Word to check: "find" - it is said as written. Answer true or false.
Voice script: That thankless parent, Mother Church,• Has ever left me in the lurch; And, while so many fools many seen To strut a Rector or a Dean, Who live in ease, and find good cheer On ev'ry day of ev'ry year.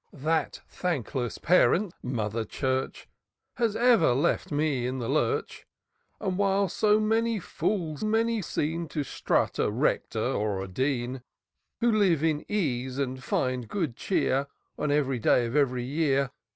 true